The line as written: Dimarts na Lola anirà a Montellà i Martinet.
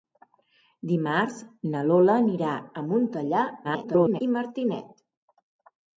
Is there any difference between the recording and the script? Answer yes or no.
yes